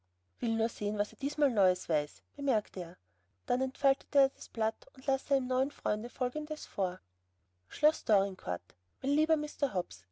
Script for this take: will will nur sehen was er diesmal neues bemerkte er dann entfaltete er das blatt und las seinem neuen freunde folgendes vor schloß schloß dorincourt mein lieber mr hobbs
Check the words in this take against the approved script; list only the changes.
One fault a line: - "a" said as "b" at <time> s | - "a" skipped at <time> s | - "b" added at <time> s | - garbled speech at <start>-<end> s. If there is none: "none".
- "will" skipped at 0.6 s
- "weiß" added at 1.9 s
- "schloß" skipped at 8.0 s